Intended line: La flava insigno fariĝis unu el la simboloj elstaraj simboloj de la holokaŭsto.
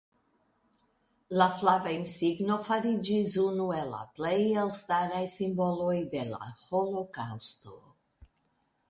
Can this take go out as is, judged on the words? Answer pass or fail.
fail